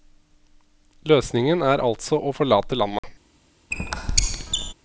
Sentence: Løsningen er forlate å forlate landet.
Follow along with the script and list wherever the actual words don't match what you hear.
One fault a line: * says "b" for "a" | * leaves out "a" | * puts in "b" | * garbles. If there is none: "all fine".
* says "altså" for "forlate"